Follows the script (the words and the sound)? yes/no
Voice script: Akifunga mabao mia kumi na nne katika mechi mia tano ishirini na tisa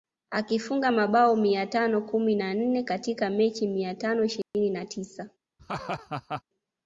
no